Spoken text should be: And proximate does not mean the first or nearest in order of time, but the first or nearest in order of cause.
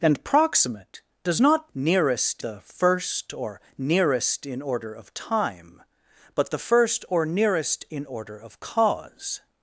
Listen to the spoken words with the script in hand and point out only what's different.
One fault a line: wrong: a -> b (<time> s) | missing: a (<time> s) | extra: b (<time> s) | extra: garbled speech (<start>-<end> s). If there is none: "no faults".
wrong: mean -> nearest (1.7 s)